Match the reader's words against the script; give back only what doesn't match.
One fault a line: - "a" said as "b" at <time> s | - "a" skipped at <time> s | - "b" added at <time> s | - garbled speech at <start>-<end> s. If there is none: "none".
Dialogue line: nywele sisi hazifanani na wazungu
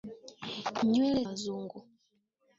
- "sisi hazifanani na" skipped at 1.2 s